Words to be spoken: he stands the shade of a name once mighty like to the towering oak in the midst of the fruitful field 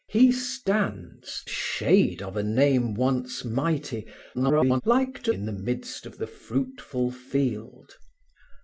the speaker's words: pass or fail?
fail